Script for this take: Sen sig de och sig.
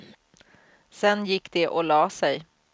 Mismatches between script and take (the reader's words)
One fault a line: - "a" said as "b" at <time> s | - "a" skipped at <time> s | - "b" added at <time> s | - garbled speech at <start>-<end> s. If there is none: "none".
- "sig" said as "gick" at 1.2 s
- "la" added at 1.8 s